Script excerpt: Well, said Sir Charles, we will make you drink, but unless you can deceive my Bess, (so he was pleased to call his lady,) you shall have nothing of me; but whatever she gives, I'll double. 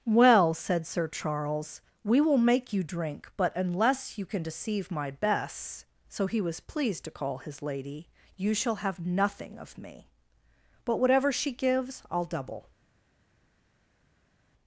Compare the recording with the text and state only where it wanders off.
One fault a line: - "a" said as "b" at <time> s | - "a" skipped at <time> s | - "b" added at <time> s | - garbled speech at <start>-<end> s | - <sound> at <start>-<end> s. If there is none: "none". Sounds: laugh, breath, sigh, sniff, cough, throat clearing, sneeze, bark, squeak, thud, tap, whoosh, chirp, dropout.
none